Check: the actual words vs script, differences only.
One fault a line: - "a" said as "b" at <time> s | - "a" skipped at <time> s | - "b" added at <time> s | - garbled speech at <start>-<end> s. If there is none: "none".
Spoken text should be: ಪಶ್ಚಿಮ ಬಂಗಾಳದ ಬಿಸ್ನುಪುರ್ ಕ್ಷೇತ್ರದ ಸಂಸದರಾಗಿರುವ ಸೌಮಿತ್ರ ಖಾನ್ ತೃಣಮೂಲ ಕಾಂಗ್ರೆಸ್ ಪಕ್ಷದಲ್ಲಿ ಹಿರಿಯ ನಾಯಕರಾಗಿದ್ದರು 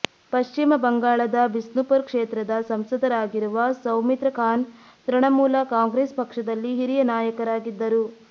none